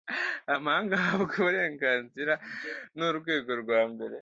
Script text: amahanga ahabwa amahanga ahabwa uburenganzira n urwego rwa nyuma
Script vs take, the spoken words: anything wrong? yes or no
yes